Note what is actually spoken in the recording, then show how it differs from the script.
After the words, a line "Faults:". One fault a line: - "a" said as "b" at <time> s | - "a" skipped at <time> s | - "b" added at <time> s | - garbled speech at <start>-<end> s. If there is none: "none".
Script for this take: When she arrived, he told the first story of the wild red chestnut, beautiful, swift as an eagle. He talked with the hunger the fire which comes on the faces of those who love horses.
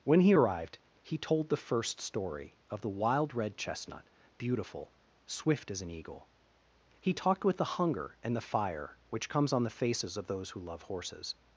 When he arrived, he told the first story of the wild red chestnut, beautiful, swift as an eagle. He talked with the hunger and the fire which comes on the faces of those who love horses.
Faults:
- "she" said as "he" at 0.2 s
- "and" added at 8.2 s